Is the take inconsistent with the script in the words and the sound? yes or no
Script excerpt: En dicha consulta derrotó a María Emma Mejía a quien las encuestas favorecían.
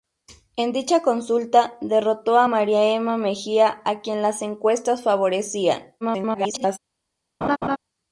yes